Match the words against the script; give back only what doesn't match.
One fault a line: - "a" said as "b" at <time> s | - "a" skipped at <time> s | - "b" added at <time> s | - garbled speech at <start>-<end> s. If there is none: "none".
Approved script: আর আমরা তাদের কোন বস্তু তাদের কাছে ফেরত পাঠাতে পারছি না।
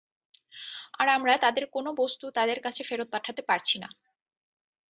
none